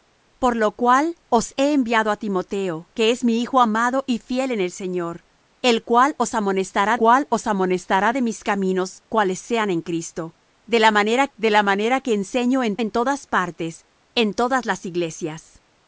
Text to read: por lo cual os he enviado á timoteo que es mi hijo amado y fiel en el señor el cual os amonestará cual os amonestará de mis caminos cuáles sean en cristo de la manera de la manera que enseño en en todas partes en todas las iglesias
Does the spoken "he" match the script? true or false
true